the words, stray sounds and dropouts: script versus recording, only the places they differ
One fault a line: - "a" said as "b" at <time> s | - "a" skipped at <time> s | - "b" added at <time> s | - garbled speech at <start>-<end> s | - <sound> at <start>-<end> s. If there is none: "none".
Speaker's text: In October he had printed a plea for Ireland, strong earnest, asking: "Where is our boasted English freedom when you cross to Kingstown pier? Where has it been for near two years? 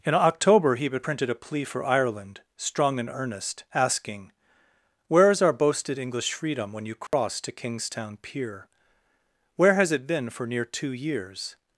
- "and" added at 3.0 s
- dropout at 7.1-7.1 s